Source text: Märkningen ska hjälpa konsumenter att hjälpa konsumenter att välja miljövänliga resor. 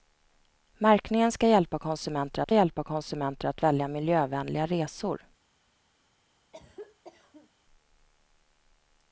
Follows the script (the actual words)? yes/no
yes